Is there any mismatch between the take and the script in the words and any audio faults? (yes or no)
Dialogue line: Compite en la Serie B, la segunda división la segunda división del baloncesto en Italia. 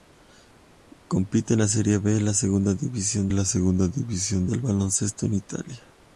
no